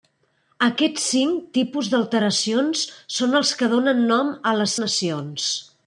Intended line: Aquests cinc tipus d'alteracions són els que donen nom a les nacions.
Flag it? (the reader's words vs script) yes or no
no